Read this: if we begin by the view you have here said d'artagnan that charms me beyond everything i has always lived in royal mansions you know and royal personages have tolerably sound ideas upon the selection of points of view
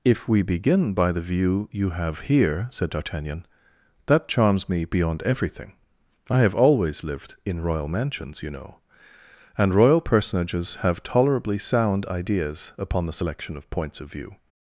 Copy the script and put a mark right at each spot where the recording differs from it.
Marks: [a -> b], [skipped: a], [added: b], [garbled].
if we begin by the view you have here said d'artagnan that charms me beyond everything i [has -> have] always lived in royal mansions you know and royal personages have tolerably sound ideas upon the selection of points of view